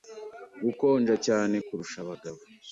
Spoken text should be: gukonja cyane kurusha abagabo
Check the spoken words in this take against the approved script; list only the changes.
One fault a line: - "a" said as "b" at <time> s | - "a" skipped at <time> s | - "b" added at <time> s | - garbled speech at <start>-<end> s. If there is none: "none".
none